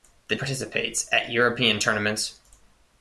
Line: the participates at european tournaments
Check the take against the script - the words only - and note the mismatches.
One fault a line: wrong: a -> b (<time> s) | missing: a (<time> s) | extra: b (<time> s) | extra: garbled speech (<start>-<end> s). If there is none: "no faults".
no faults